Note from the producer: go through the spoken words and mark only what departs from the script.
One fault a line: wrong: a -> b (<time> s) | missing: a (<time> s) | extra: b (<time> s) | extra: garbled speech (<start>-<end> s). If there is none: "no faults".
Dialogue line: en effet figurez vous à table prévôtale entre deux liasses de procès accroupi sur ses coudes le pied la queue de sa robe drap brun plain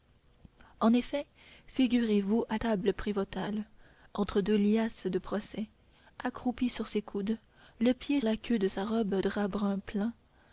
no faults